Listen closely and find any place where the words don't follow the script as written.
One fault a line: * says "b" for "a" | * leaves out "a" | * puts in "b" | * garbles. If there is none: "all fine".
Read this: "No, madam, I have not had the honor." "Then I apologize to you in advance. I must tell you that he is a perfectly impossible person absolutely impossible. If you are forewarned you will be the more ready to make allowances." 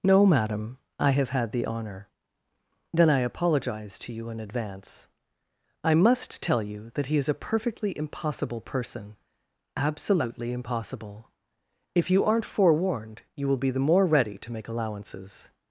* leaves out "not"
* says "aren't" for "are"